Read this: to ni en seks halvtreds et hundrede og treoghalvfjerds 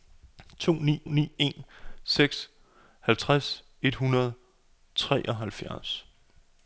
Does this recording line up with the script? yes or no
no